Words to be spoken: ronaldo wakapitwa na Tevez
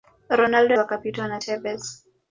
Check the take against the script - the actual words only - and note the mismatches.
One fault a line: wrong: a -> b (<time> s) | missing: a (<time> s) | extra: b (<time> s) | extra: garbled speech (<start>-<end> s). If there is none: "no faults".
no faults